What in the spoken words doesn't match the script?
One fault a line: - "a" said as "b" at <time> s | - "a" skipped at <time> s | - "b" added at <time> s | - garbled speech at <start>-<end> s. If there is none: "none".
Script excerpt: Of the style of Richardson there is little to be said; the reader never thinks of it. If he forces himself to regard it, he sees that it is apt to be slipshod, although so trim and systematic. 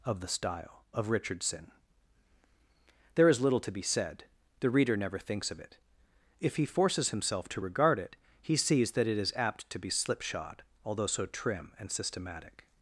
none